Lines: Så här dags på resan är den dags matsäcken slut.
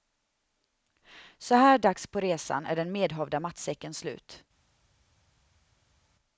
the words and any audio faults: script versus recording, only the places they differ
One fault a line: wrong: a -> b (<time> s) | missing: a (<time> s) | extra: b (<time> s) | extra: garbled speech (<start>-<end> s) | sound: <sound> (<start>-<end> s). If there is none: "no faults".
wrong: dags -> medhavda (2.9 s)